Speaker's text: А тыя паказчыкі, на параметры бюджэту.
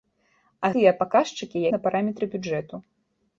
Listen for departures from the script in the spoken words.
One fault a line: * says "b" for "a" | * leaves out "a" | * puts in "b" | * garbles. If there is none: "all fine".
all fine